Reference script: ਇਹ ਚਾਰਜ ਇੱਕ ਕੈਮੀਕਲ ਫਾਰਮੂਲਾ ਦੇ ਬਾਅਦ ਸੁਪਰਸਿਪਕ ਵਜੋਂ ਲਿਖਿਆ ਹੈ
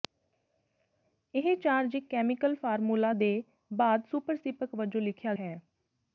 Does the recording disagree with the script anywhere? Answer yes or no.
no